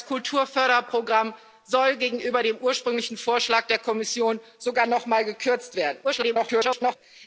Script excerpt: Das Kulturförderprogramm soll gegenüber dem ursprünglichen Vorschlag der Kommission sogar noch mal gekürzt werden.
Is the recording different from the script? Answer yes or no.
yes